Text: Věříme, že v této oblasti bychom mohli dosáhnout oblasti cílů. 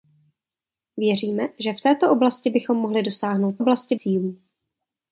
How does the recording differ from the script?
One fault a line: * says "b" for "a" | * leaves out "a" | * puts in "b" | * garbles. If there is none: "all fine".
all fine